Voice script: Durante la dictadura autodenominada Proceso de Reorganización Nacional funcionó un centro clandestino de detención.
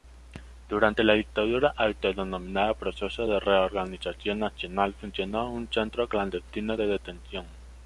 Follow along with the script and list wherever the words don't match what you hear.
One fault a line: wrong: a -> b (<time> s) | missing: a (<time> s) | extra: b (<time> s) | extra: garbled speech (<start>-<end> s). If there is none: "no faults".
no faults